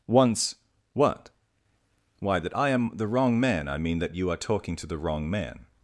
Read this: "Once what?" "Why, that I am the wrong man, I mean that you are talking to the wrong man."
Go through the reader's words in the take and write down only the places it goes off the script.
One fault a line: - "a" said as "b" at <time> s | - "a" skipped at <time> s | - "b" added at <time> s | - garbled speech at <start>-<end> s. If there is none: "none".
none